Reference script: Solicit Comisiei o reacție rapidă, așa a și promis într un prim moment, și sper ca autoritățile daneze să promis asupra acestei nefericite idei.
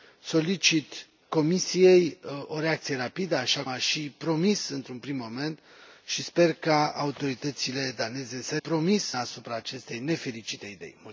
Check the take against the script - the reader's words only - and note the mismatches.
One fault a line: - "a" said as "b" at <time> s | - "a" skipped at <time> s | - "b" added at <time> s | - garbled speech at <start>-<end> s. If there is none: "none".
none